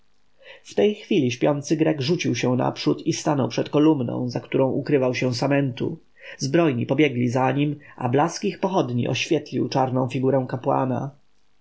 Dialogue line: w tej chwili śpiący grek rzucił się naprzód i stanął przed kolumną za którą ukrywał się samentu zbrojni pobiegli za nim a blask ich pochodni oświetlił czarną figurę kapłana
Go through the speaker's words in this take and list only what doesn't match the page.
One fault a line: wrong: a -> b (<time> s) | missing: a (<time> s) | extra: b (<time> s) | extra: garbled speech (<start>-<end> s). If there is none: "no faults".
no faults